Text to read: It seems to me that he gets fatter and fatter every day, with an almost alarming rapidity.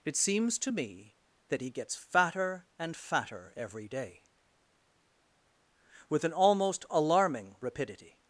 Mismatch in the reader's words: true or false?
false